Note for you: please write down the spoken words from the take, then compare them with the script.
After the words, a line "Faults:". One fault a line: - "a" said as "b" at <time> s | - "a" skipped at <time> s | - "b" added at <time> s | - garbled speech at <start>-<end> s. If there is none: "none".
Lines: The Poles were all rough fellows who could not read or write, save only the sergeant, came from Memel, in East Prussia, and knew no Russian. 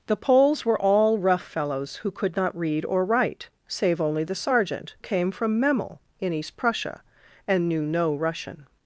The Poles were all rough fellows who could not read or write, save only the sergeant, came from Memel, in East Prussia, and knew no Russian.
Faults:
none